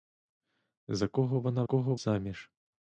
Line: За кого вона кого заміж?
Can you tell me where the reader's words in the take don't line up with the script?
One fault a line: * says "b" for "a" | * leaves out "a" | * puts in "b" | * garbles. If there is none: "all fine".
all fine